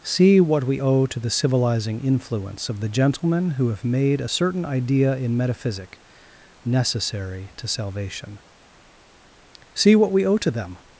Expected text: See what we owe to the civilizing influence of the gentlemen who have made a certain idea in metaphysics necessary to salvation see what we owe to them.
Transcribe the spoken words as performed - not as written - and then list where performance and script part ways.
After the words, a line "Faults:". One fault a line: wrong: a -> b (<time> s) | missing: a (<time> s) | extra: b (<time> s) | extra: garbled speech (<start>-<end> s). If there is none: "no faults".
See what we owe to the civilizing influence of the gentlemen who have made a certain idea in metaphysic necessary to salvation see what we owe to them.
Faults:
wrong: metaphysics -> metaphysic (5.4 s)